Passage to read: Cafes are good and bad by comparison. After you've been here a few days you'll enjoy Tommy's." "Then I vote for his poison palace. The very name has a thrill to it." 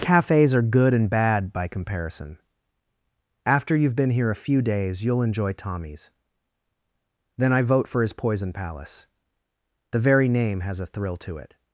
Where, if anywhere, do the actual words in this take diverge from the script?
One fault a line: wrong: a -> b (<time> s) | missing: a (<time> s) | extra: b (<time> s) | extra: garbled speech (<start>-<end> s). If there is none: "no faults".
no faults